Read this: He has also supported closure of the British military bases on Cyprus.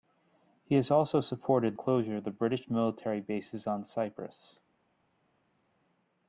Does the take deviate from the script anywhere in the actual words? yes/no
no